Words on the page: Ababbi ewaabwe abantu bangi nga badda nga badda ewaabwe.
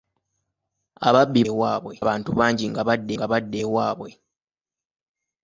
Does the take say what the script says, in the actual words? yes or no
yes